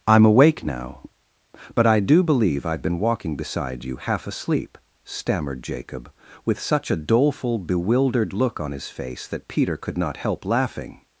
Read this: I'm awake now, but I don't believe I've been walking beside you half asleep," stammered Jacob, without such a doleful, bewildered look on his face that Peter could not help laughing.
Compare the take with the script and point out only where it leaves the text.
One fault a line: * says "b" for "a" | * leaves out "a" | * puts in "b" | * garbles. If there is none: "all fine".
* says "do" for "don't"
* says "with" for "without"